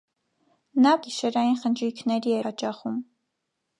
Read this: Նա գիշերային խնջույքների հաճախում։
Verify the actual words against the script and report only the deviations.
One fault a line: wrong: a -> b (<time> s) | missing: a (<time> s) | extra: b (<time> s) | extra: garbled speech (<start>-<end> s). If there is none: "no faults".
no faults